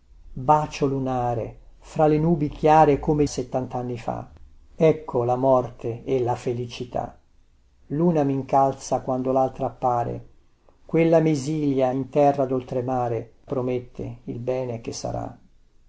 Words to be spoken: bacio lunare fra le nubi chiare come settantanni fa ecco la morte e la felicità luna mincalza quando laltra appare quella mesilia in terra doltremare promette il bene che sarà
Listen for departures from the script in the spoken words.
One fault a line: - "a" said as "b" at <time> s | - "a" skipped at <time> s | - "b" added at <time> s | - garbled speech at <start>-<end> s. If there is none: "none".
none